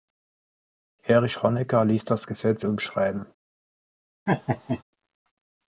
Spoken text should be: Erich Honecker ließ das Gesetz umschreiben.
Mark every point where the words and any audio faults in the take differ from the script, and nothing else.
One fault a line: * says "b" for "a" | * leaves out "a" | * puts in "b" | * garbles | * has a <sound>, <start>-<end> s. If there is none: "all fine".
* has a laugh, 4.3-4.8 s